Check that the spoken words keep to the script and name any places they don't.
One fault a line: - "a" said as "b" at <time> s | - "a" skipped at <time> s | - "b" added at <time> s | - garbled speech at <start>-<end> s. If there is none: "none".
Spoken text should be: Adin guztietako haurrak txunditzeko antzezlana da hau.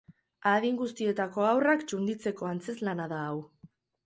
none